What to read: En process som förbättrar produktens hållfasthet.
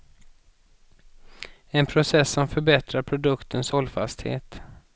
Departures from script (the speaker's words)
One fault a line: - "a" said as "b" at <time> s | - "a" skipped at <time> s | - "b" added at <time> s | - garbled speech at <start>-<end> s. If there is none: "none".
none